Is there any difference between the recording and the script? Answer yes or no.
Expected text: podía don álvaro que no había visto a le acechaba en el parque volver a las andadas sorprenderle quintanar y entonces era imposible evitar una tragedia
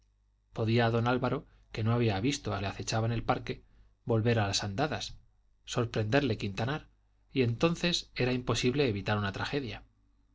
no